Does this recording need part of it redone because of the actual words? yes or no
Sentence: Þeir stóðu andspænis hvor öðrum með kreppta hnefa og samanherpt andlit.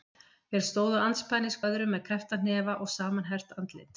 yes